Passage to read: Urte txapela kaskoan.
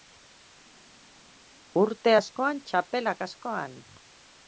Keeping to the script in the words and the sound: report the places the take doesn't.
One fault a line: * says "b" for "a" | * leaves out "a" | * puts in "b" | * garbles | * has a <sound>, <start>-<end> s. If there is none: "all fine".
* puts in "askoan"